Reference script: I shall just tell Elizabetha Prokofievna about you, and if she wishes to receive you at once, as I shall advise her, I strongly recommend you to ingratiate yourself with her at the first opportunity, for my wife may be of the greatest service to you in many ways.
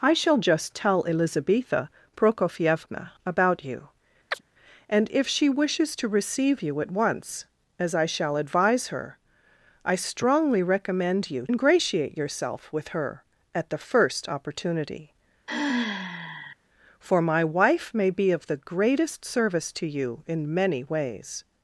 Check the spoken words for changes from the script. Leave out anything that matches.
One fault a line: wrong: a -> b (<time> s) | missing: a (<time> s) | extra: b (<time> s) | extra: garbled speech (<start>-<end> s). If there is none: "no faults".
missing: to (11.5 s)